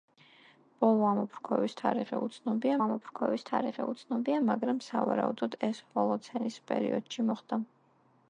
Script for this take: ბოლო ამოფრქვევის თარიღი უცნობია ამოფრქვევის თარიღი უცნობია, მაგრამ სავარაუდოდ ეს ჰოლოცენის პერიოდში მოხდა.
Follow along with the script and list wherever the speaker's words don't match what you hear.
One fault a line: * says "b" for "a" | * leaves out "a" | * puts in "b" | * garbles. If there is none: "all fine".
all fine